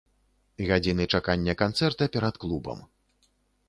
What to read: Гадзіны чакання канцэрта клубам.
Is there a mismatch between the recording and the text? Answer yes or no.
yes